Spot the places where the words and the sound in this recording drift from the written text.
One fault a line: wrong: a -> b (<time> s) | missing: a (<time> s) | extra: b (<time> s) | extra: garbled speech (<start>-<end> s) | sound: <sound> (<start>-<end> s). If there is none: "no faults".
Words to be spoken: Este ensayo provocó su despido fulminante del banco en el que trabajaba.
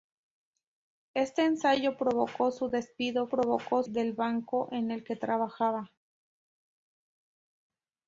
wrong: fulminante -> provocó (3.3 s)